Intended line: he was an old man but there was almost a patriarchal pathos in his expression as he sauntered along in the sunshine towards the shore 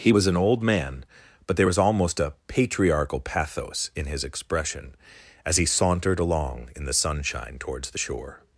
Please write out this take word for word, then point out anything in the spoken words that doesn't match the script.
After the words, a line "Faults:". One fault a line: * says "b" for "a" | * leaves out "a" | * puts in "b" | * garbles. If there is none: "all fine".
he was an old man but there was almost a patriarchal pathos in his expression as he sauntered along in the sunshine towards the shore
Faults:
all fine